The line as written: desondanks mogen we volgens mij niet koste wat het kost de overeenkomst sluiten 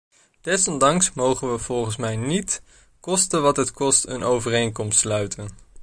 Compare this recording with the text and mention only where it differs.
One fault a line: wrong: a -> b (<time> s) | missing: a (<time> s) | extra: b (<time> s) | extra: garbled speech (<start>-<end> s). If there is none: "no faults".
wrong: de -> een (4.0 s)